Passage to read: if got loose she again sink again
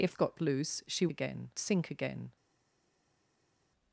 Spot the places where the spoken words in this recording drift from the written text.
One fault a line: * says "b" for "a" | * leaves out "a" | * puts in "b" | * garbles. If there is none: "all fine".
all fine